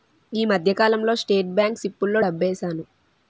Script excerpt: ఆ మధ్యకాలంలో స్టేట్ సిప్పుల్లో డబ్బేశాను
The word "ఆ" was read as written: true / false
false